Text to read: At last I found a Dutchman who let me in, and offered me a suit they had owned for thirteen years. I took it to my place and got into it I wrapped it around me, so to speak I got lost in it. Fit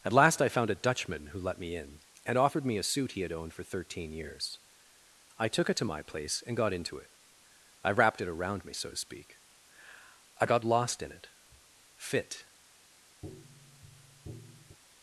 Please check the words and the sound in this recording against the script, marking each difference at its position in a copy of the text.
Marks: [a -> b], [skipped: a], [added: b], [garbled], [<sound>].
At last I found a Dutchman who let me in, and offered me a suit [they -> he] had owned for thirteen years. I took it to my place and got into it I wrapped it around me, so to speak I got lost in it. Fit [tap]